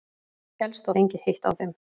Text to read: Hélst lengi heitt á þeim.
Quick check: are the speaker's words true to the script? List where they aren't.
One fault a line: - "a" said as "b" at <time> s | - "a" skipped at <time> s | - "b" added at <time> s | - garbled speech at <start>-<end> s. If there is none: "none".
none